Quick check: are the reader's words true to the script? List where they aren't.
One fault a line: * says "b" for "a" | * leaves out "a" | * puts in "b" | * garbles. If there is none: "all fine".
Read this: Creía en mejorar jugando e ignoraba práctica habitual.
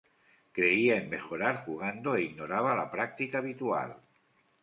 * puts in "la"